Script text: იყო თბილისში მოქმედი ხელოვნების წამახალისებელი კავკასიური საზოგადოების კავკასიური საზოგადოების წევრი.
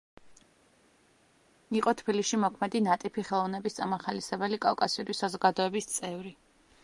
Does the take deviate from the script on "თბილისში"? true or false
false